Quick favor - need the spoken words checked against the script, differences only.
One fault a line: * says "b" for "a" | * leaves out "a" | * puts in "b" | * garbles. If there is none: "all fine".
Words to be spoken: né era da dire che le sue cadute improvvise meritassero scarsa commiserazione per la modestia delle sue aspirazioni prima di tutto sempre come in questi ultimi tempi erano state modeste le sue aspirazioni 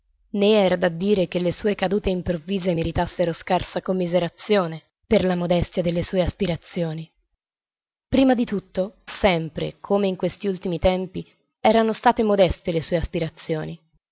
all fine